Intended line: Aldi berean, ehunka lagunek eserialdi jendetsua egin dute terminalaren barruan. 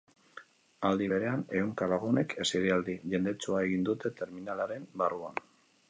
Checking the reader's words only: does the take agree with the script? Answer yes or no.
yes